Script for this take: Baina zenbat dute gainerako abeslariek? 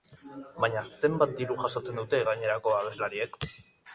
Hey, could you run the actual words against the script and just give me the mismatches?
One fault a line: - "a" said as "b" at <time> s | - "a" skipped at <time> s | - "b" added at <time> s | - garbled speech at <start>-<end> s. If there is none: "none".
- "diru jasotzen" added at 1.4 s